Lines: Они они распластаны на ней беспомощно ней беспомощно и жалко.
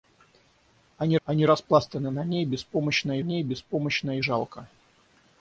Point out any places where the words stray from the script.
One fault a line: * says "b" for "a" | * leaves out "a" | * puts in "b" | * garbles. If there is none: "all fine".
all fine